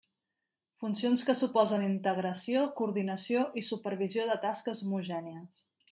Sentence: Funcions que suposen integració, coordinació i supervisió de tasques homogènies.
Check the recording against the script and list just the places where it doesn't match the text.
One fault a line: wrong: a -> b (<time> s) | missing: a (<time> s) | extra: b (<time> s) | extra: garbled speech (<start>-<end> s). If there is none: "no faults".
no faults